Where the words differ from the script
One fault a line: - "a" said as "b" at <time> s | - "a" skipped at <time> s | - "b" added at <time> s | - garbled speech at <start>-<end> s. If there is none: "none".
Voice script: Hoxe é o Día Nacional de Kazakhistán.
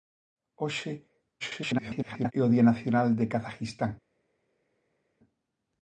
- garbled speech at 1.4-2.3 s